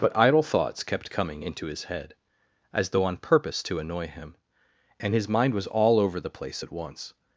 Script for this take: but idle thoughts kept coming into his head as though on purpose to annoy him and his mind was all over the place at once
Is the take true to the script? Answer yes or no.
yes